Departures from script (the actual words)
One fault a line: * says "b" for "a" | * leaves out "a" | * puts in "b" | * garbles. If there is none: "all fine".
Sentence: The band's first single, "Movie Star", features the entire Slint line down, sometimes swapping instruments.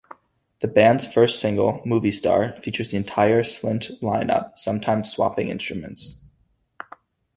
* says "up" for "down"